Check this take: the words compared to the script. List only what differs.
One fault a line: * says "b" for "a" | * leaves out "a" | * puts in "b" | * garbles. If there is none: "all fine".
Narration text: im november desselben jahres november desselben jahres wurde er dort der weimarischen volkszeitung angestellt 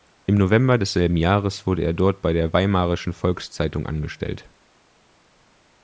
* leaves out "november desselben jahres"
* puts in "bei"